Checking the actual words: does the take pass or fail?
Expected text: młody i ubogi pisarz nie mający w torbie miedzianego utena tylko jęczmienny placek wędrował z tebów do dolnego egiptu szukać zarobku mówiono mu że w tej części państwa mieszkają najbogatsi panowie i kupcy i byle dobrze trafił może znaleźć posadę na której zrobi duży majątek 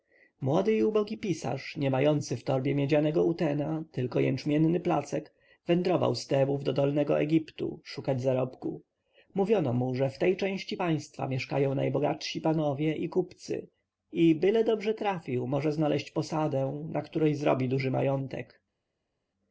pass